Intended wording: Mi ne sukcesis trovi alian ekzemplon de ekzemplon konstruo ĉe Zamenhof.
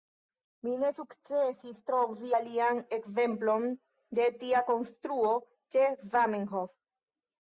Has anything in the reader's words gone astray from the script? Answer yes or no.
yes